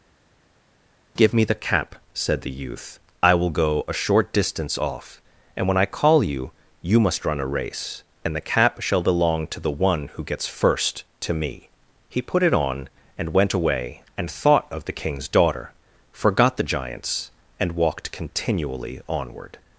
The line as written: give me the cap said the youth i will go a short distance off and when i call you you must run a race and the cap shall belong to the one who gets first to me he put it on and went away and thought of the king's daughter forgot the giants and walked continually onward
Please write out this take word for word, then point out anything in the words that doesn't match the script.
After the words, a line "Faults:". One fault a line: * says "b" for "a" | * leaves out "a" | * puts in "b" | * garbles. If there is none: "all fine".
give me the cap said the youth i will go a short distance off and when i call you you must run a race and the cap shall belong to the one who gets first to me he put it on and went away and thought of the king's daughter forgot the giants and walked continually onward
Faults:
all fine